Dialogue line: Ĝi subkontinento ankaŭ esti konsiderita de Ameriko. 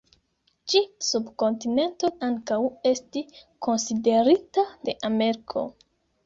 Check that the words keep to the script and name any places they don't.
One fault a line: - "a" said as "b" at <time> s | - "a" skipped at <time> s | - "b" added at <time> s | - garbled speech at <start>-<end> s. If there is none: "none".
none